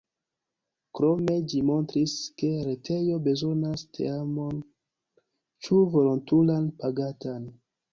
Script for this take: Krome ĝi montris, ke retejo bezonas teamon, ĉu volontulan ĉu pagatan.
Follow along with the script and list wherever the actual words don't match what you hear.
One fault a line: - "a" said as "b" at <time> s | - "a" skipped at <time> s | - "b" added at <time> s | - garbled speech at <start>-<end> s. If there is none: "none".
- "ĉu" skipped at 6.7 s